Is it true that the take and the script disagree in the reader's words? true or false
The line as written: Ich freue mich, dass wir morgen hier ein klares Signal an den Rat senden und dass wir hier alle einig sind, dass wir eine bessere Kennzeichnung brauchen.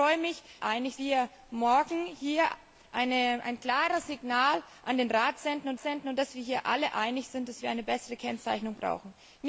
true